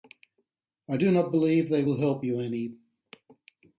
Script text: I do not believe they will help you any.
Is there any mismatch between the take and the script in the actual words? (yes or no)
no